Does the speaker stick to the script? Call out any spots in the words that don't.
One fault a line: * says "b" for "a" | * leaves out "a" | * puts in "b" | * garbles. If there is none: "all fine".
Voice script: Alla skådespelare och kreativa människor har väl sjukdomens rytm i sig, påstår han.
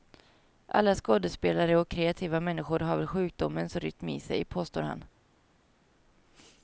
all fine